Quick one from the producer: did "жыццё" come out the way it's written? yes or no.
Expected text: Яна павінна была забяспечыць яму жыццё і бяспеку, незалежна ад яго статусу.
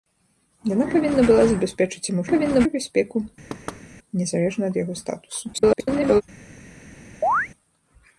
no